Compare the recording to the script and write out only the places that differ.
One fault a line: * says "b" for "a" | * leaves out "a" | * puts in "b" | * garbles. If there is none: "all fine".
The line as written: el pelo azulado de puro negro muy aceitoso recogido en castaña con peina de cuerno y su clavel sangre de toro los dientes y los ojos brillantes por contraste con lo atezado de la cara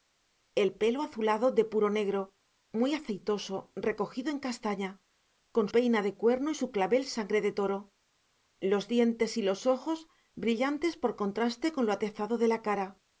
all fine